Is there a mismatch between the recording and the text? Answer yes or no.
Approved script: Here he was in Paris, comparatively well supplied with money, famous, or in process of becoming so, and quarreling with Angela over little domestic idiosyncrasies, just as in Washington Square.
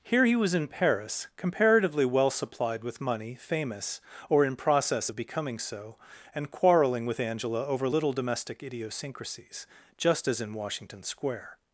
no